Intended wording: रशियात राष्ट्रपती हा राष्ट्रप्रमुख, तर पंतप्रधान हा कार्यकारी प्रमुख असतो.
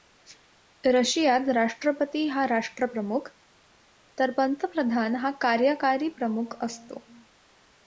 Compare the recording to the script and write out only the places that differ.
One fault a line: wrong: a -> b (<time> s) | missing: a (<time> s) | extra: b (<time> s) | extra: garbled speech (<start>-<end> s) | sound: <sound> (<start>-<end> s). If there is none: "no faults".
no faults